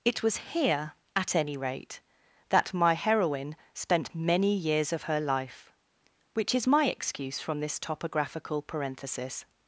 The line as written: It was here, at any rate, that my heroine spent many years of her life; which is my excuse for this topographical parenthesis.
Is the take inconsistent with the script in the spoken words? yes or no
yes